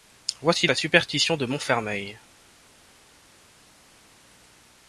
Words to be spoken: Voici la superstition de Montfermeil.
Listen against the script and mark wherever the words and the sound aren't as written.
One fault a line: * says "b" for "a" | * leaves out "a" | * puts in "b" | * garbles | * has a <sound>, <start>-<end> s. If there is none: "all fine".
all fine